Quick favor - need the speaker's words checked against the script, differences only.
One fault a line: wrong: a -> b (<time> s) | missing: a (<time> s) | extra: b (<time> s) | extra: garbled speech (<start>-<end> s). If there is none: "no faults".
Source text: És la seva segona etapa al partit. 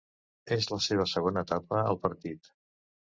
no faults